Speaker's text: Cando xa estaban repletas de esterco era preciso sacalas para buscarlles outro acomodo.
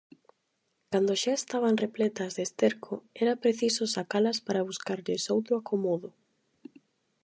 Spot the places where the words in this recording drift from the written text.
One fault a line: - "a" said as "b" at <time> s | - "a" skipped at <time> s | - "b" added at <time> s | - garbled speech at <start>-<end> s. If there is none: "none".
none